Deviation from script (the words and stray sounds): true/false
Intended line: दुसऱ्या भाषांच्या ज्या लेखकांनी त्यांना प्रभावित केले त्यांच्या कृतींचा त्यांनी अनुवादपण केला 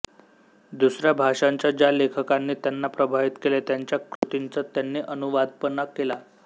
true